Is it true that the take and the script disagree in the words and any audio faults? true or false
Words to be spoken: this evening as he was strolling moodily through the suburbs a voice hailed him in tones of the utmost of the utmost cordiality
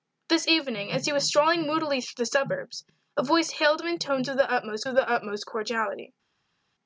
false